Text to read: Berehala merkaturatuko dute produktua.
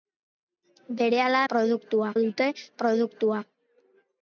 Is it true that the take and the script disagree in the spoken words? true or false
true